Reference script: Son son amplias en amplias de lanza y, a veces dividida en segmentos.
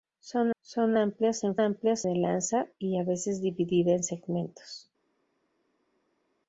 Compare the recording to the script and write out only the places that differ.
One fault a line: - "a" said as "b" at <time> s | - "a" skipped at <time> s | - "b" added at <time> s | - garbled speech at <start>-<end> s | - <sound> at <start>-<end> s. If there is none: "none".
none